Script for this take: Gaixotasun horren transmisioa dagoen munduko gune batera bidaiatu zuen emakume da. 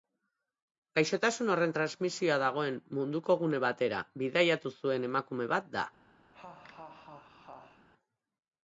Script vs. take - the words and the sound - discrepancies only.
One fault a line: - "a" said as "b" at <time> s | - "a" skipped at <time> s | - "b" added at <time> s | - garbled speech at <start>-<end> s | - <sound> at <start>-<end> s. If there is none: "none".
- "bat" added at 5.6 s
- laugh at 6.3-7.9 s